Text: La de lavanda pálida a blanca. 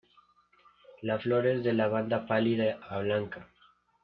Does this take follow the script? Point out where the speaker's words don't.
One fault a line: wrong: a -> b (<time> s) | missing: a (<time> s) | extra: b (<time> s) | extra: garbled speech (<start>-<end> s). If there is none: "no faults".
extra: flor es (1.2 s)